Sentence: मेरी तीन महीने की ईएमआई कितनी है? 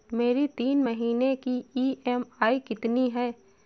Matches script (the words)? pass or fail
pass